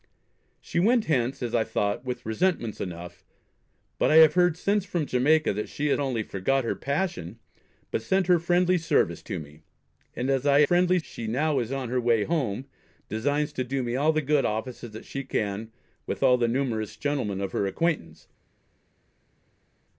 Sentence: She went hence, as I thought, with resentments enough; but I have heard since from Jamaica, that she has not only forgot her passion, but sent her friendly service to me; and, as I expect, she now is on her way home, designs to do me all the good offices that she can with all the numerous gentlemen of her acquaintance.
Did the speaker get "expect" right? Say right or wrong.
wrong